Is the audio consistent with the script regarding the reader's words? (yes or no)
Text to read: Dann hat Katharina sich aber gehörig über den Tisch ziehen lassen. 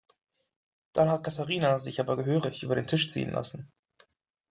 yes